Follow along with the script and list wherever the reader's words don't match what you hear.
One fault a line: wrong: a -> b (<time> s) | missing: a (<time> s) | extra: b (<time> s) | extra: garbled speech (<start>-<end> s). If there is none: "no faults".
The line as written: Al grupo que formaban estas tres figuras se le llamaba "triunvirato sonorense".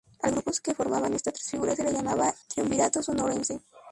no faults